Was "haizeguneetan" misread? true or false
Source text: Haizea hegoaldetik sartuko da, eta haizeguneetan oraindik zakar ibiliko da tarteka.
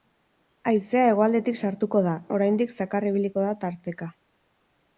true